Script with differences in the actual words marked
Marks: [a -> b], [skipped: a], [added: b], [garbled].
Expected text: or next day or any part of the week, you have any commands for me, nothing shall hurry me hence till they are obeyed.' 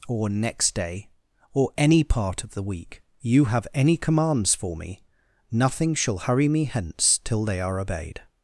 or next day or any part of the week, you have any commands for me, nothing shall hurry me hence till they are obeyed.'